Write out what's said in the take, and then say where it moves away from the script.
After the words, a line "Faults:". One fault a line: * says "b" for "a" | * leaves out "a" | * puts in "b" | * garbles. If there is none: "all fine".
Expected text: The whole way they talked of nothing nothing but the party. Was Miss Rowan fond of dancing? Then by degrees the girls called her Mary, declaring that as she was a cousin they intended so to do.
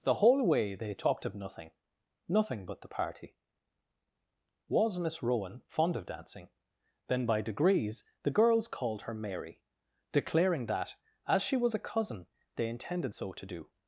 The whole way they talked of nothing nothing but the party. Was Miss Rowan fond of dancing? Then by degrees the girls called her Mary, declaring that as she was a cousin they intended so to do.
Faults:
all fine